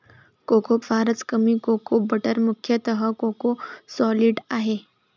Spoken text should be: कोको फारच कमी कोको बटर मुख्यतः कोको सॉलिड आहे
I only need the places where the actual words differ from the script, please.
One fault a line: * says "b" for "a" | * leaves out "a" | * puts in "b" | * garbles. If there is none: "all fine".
all fine